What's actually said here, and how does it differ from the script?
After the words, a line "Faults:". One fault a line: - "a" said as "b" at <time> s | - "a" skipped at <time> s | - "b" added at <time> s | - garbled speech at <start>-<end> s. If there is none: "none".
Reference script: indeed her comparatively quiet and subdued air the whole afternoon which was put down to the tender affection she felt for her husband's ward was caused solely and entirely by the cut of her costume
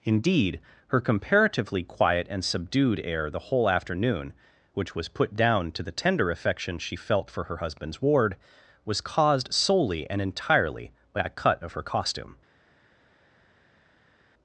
indeed her comparatively quiet and subdued air the whole afternoon which was put down to the tender affection she felt for her husband's ward was caused solely and entirely by a cut of her costume
Faults:
- "the" said as "a" at 11.2 s